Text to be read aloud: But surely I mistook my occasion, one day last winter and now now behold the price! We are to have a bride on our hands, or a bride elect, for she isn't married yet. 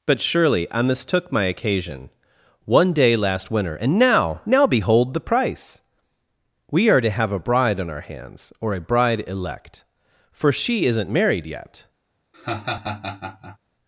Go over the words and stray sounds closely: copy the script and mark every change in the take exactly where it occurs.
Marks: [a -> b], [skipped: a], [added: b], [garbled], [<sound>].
But surely I mistook my occasion, one day last winter and now now behold the price! We are to have a bride on our hands, or a bride elect, for she isn't married yet. [laugh]